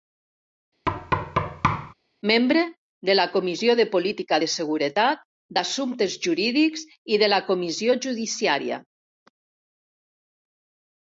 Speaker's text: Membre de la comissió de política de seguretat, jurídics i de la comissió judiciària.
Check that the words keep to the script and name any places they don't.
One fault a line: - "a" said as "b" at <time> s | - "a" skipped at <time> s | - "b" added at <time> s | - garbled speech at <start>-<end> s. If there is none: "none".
- "d'assumptes" added at 5.6 s